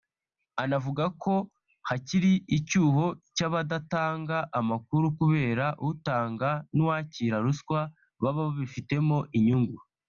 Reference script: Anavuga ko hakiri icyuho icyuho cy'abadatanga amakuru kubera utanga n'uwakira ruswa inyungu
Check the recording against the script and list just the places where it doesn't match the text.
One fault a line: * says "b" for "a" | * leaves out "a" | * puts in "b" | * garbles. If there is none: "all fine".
* leaves out "icyuho"
* puts in "baba babifitemo"